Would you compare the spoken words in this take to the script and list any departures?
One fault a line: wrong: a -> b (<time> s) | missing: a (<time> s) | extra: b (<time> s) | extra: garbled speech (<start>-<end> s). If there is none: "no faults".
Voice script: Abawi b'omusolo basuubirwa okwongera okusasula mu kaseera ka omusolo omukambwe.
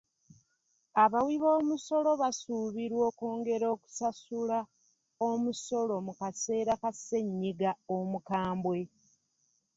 extra: omusolo (5.3 s)
wrong: omusolo -> ssennyiga (7.0 s)